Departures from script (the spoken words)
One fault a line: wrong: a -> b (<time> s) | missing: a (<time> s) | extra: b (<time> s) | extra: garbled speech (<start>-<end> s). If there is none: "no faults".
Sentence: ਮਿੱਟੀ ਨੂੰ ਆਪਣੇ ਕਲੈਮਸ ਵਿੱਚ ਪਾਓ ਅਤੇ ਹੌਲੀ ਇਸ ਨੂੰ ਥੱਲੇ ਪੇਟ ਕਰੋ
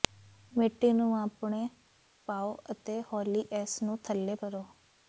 missing: ਕਲੈਮਸ ਵਿੱਚ (1.7 s)
missing: ਪੇਟ (4.4 s)